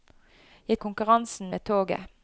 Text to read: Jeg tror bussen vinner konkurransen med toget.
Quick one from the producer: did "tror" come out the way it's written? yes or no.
no